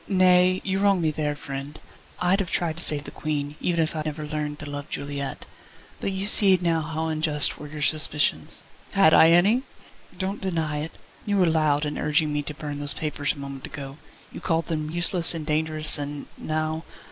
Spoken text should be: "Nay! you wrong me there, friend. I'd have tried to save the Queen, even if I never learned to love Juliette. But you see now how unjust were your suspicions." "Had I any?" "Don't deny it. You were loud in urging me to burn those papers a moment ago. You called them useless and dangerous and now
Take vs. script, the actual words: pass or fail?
pass